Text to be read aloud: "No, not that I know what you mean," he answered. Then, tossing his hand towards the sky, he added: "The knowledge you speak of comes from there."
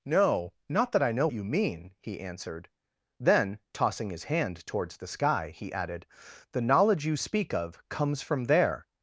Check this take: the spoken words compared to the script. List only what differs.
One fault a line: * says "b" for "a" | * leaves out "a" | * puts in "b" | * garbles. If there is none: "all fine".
* leaves out "what"